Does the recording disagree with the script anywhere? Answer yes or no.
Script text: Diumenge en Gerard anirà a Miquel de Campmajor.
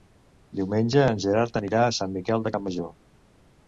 yes